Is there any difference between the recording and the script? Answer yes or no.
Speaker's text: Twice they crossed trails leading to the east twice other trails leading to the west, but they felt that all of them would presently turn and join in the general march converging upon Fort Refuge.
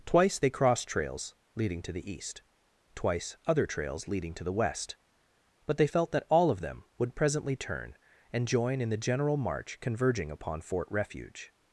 no